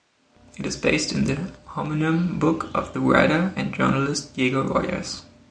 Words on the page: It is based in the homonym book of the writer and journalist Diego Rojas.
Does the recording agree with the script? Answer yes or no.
yes